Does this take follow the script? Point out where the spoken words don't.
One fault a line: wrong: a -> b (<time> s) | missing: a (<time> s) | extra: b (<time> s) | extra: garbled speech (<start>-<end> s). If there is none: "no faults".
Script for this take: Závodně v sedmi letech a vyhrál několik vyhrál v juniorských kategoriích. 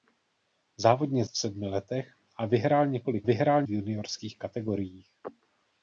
no faults